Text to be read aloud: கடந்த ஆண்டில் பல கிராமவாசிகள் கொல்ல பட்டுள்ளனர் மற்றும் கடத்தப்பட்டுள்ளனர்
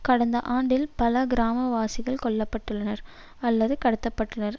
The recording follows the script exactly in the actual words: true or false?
false